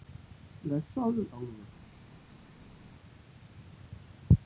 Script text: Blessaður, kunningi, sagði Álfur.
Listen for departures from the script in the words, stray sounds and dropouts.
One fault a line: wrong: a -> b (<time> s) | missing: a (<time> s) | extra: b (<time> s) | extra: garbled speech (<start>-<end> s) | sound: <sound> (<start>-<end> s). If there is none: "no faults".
missing: kunningi sagði (1.3 s)